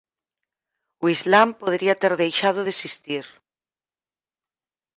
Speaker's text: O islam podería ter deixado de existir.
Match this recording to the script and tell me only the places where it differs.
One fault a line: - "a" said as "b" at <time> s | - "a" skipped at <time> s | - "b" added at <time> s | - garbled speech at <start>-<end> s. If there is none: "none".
none